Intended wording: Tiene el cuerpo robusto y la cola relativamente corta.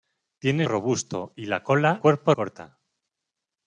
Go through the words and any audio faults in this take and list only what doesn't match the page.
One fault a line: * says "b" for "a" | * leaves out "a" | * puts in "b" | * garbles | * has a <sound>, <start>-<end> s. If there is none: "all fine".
* leaves out "el cuerpo"
* says "cuerpo" for "relativamente"